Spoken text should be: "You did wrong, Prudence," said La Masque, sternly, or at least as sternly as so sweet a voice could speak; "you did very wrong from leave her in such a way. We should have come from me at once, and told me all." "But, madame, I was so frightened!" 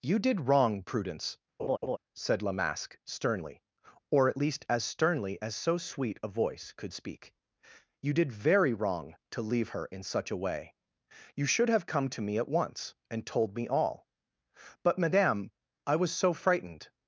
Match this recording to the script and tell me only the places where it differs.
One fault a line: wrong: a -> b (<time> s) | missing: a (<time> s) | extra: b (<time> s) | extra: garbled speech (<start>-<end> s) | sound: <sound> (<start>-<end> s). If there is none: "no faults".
sound: laugh (1.6-2.0 s)
wrong: from -> to (9.3 s)
wrong: We -> You (11.3 s)
wrong: from -> to (12.1 s)